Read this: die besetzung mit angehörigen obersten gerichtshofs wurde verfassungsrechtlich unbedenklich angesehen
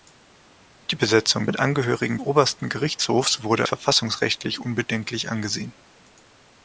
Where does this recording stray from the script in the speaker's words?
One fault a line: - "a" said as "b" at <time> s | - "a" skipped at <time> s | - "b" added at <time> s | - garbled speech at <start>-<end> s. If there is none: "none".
none